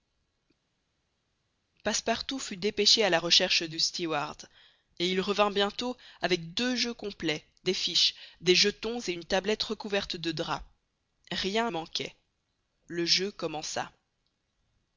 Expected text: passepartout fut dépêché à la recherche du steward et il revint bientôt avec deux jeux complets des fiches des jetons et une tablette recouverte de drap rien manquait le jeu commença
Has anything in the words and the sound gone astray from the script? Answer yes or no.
no